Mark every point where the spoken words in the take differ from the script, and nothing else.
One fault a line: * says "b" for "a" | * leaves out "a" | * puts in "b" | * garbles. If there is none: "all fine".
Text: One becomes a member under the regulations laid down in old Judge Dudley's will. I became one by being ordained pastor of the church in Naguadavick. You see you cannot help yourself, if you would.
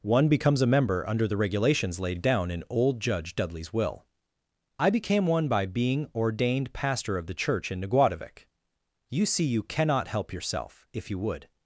all fine